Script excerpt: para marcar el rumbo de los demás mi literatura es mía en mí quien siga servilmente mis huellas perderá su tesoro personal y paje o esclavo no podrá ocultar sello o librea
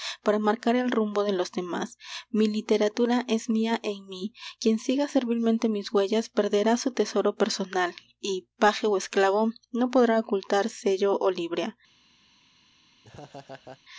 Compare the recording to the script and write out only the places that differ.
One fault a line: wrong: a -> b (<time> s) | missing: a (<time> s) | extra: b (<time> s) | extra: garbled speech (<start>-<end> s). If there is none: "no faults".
no faults